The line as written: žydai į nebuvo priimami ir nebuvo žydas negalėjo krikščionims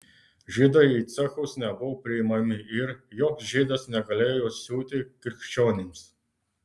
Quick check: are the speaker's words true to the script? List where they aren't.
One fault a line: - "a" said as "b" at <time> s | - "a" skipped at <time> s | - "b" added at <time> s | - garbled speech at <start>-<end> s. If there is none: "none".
- "cechus" added at 1.1 s
- "nebuvo" said as "joks" at 3.2 s
- "siūti" added at 4.6 s